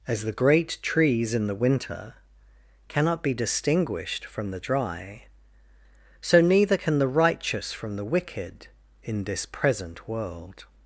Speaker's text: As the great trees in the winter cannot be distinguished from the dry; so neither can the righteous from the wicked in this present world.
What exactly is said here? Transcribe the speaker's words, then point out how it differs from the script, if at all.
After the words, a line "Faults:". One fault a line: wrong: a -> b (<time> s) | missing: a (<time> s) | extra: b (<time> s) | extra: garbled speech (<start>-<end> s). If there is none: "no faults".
As the great trees in the winter cannot be distinguished from the dry; so neither can the righteous from the wicked in this present world.
Faults:
no faults